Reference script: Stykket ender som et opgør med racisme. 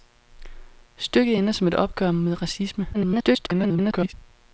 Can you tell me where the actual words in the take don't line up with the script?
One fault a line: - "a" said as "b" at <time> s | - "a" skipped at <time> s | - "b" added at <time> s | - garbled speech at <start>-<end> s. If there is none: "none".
- garbled speech at 2.9-4.1 s